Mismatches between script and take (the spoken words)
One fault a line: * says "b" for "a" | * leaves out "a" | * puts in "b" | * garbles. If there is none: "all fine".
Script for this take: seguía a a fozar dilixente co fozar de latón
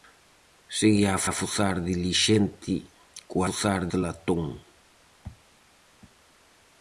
all fine